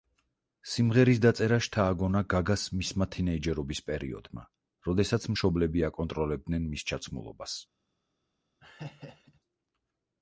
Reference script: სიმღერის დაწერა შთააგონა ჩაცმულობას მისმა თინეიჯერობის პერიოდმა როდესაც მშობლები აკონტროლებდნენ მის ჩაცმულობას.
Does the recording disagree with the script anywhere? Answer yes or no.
yes